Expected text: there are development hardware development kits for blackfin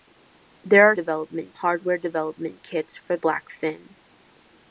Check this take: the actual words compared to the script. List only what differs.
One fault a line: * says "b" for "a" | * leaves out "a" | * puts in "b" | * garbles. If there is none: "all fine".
all fine